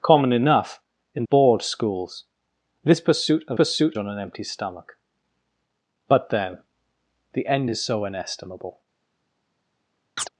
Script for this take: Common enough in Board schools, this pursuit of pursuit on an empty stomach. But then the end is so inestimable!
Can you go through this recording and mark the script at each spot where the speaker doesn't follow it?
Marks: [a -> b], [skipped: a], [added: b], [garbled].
Common enough in Board schools, this pursuit of pursuit on an empty stomach. But then the end is so inestimable!